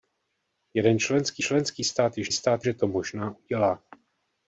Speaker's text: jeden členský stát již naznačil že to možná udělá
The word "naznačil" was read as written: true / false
false